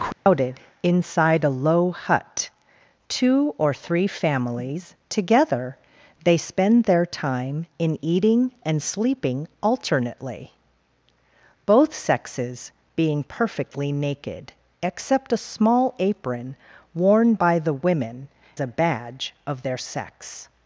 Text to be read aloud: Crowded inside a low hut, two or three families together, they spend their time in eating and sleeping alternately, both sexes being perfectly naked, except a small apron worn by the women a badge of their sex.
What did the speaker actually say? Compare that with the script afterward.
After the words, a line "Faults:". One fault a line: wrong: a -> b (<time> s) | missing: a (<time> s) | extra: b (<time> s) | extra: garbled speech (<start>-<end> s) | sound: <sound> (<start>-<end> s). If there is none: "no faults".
Crowded inside a low hut, two or three families together, they spend their time in eating and sleeping alternately, both sexes being perfectly naked, except a small apron worn by the women a badge of their sex.
Faults:
sound: dropout (0.1-0.3 s)